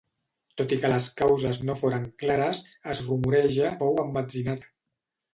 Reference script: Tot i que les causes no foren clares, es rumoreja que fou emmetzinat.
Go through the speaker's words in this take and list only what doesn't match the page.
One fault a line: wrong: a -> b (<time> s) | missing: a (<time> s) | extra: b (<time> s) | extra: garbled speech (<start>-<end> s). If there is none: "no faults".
missing: que (3.7 s)